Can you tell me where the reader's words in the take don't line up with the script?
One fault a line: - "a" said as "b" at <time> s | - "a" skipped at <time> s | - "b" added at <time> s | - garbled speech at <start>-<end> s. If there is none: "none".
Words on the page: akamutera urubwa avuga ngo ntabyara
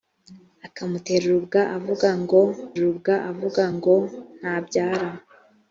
- "urubwa avuga ngo" added at 2.8 s